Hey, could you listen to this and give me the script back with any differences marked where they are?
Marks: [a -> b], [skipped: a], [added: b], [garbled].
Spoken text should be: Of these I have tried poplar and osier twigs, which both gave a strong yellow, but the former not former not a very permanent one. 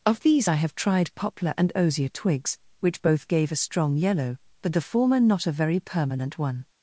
Of these I have tried poplar and osier twigs, which both gave a strong yellow, but the former not [skipped: former not] a very permanent one.